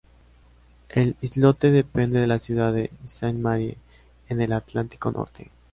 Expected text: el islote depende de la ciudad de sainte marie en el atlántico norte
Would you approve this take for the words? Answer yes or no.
yes